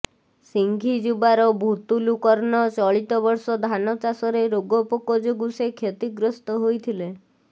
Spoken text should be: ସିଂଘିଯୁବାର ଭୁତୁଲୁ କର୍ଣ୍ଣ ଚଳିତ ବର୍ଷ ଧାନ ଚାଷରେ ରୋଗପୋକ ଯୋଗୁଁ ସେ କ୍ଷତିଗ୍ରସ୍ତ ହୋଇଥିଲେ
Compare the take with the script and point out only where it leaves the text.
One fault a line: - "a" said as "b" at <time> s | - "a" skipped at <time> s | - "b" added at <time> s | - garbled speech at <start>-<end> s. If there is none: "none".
none